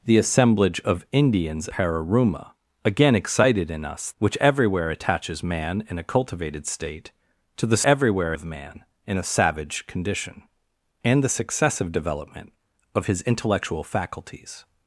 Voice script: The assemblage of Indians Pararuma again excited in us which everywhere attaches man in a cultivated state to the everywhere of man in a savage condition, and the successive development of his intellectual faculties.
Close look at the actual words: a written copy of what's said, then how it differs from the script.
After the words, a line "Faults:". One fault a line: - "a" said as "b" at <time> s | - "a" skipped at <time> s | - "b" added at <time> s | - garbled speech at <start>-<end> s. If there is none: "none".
The assemblage of Indians Pararuma again excited in us which everywhere attaches man in a cultivated state to the everywhere of man in a savage condition, and the successive development of his intellectual faculties.
Faults:
none